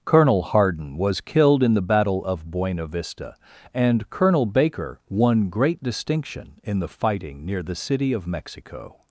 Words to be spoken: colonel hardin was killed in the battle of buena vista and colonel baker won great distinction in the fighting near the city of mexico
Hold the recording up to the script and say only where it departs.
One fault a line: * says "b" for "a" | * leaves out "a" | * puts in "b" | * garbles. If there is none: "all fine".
all fine